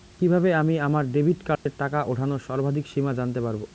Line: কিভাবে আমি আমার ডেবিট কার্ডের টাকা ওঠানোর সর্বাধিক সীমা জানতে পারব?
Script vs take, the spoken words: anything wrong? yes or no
no